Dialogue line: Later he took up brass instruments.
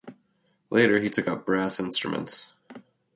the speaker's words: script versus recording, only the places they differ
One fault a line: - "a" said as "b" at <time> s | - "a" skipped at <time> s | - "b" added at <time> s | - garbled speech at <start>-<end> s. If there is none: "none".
none